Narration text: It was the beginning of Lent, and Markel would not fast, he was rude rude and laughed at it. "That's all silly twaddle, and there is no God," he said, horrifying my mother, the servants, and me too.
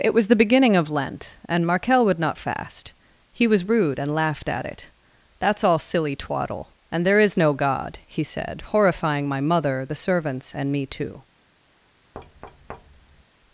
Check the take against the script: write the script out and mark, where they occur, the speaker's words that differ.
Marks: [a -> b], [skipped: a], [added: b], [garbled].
It was the beginning of Lent, and Markel would not fast, he was rude [skipped: rude] and laughed at it. "That's all silly twaddle, and there is no God," he said, horrifying my mother, the servants, and me too.